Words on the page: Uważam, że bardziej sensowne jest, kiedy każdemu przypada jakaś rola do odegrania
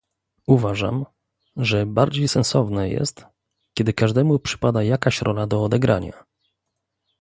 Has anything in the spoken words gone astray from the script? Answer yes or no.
no